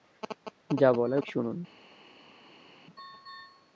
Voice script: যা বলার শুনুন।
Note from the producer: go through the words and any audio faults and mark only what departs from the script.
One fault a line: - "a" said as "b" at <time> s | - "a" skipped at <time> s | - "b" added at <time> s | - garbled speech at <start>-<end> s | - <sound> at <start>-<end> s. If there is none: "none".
none